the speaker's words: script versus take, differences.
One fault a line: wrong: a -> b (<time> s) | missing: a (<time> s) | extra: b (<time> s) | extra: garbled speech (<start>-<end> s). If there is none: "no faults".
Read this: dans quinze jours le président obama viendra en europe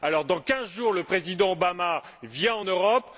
no faults